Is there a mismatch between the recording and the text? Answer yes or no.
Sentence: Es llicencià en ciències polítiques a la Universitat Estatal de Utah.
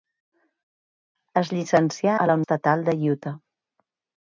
yes